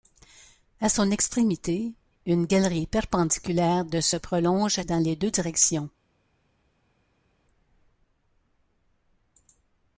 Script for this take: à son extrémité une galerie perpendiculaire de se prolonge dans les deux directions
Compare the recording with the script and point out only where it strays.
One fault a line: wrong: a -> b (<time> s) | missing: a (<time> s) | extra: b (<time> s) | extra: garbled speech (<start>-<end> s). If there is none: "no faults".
no faults